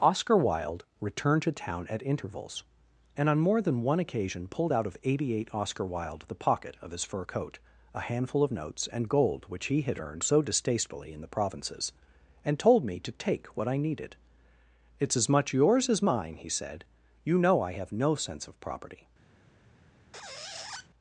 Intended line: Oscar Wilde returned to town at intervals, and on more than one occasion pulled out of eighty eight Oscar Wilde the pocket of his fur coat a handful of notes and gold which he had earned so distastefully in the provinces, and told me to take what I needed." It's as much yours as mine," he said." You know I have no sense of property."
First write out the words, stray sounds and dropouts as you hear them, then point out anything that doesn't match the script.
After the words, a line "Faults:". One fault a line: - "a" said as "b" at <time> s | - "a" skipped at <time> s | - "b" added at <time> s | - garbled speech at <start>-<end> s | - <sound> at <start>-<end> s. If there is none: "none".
Oscar Wilde returned to town at intervals, and on more than one occasion pulled out of eighty eight Oscar Wilde the pocket of his fur coat a handful of notes and gold which he had earned so distastefully in the provinces, and told me to take what I needed." It's as much yours as mine," he said." You know I have no sense of property."
Faults:
- squeak at 20.1-20.9 s